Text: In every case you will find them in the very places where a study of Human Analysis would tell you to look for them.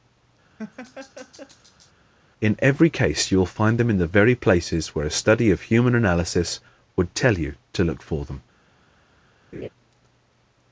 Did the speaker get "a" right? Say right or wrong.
right